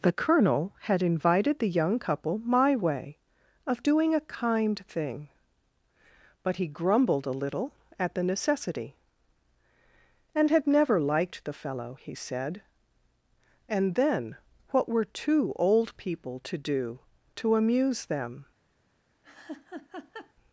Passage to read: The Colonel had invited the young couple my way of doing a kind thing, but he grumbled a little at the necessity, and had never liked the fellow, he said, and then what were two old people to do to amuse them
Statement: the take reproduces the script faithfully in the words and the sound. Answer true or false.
false